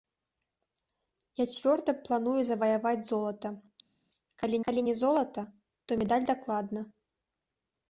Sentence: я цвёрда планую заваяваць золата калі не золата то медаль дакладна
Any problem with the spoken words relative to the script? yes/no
yes